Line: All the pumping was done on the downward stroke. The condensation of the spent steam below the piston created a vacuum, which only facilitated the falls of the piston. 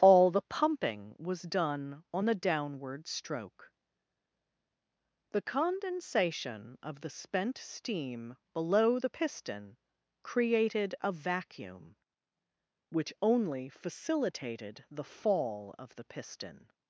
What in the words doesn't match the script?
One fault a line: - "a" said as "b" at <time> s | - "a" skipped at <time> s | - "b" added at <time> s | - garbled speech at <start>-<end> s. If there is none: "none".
- "falls" said as "fall" at 15.1 s